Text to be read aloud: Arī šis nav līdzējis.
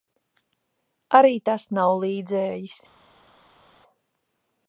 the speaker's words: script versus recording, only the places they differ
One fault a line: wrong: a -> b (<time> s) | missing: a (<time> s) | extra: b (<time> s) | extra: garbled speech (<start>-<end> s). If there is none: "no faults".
wrong: šis -> tas (1.5 s)